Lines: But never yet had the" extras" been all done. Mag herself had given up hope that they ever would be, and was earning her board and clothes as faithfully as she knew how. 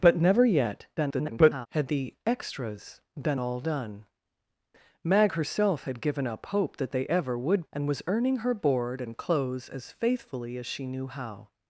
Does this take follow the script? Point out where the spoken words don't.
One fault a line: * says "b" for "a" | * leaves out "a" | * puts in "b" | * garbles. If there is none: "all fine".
* garbles
* leaves out "be"